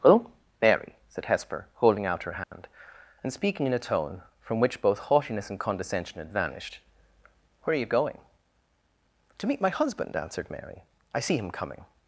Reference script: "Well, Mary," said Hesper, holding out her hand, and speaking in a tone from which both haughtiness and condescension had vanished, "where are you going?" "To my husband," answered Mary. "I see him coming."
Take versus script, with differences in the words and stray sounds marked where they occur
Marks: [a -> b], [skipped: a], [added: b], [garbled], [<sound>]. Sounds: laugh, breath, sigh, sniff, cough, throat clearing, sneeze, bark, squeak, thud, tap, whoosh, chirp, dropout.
"Well, Mary," said Hesper, holding out her hand, [dropout] and speaking in a tone from which both haughtiness and condescension had vanished, "where are you going?" "To [added: meet] my husband," answered Mary. "I see him coming."